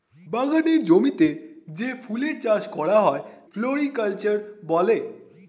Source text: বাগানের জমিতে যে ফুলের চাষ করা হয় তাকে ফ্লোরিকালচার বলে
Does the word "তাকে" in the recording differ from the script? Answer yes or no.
yes